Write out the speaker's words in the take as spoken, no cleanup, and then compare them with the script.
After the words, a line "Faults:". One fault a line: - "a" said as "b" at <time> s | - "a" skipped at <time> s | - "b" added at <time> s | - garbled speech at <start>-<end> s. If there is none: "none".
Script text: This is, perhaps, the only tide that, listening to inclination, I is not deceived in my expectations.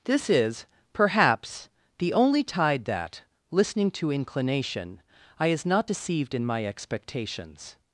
This is, perhaps, the only tide that, listening to inclination, I is not deceived in my expectations.
Faults:
none